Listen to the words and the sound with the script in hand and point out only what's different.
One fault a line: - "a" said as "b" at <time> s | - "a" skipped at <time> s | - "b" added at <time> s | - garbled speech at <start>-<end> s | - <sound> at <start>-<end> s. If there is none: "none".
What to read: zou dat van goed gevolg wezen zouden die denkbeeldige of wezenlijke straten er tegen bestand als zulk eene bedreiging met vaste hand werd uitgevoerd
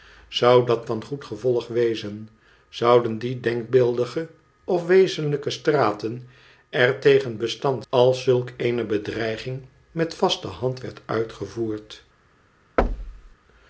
- thud at 12.8-13.4 s